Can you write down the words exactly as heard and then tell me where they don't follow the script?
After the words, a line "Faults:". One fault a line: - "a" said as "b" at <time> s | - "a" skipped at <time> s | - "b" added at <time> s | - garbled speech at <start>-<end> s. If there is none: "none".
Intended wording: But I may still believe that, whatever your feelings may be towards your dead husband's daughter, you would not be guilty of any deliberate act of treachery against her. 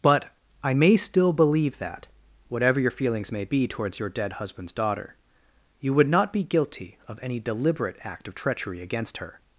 But I may still believe that, whatever your feelings may be towards your dead husband's daughter, you would not be guilty of any deliberate act of treachery against her.
Faults:
none